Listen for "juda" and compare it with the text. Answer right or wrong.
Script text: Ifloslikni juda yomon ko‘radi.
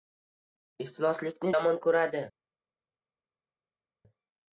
wrong